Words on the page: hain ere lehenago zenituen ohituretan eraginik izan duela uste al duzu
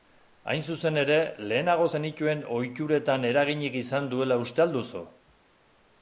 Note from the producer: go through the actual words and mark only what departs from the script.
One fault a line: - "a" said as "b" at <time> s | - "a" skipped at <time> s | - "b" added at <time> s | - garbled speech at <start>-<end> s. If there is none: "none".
- "zuzen" added at 0.8 s